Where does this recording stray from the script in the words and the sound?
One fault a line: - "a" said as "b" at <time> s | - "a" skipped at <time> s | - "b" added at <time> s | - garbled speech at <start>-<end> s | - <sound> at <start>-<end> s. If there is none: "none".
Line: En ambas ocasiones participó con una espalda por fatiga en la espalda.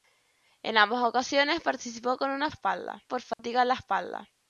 - dropout at 3.3-3.4 s